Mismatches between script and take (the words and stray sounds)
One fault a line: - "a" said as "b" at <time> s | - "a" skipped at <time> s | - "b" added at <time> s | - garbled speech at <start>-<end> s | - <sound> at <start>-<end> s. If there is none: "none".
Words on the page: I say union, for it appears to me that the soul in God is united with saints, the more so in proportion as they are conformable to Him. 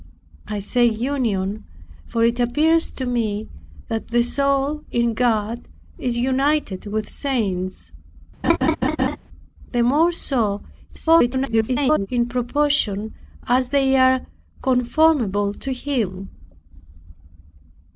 - laugh at 8.4-9.2 s
- garbled speech at 10.9-12.1 s